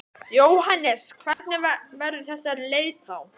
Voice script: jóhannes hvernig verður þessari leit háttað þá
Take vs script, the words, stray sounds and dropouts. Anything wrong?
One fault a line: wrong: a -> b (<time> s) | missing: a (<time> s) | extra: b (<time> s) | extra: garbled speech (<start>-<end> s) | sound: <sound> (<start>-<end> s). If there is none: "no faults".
sound: dropout (1.3-1.4 s)
missing: háttað (3.1 s)